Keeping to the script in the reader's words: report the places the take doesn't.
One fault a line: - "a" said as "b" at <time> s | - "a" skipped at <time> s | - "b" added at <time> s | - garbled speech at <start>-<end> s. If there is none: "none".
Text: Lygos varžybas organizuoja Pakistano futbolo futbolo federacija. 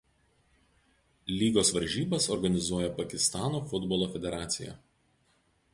- "futbolo" skipped at 4.1 s